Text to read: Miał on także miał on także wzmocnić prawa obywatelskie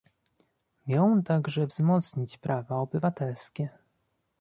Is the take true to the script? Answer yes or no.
no